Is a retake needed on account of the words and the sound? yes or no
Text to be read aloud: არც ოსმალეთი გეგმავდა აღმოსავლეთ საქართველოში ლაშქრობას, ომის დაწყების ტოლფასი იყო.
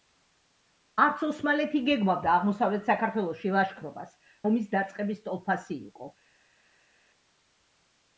no